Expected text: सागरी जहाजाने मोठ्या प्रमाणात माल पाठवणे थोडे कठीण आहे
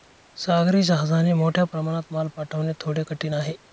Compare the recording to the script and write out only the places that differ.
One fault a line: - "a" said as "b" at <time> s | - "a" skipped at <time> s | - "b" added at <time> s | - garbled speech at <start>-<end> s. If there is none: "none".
none